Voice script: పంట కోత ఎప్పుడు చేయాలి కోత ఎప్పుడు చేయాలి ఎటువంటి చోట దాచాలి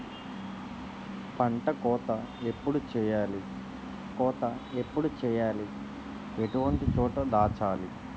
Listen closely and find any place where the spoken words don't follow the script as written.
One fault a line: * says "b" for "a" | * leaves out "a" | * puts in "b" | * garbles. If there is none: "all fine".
all fine